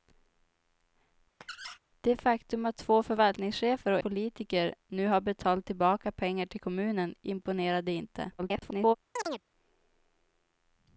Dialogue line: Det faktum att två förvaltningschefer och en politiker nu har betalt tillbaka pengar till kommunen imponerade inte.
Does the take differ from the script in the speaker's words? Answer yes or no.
yes